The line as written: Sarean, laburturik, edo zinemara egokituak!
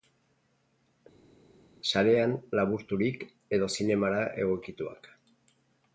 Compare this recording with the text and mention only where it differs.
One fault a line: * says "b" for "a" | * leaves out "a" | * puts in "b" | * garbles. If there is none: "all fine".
all fine